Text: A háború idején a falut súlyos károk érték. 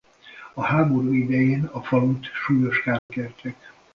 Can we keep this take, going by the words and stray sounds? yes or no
no